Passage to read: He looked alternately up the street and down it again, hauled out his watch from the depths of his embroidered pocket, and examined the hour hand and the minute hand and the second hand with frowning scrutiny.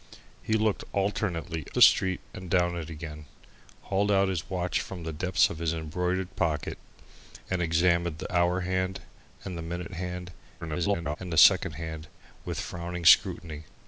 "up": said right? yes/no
no